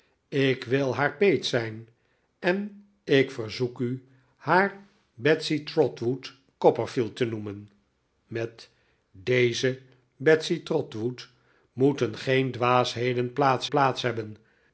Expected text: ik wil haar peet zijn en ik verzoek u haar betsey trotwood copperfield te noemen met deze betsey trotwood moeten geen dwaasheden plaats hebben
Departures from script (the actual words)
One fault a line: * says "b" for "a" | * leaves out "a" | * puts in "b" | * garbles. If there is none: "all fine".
* puts in "plaats"